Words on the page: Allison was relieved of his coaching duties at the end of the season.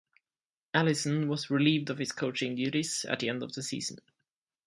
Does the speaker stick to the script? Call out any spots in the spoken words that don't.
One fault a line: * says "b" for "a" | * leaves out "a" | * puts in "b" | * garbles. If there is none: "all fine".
all fine